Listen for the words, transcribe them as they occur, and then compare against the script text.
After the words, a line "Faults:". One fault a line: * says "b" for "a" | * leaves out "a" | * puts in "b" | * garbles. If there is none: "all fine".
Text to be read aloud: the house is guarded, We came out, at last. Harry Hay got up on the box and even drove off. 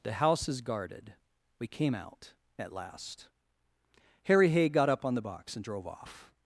the house is guarded, We came out, at last. Harry Hay got up on the box and drove off.
Faults:
* leaves out "even"